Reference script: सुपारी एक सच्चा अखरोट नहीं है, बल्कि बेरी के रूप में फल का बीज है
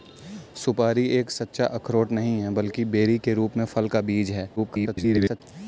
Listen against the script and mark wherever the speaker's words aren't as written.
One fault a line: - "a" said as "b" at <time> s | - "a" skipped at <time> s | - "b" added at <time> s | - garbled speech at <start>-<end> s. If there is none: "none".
- garbled speech at 4.6-5.4 s